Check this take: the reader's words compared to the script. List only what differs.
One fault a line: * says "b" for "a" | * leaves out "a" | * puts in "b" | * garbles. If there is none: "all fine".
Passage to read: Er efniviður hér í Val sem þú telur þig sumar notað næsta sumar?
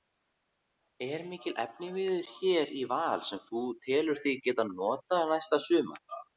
* puts in "mikill"
* says "geta" for "sumar"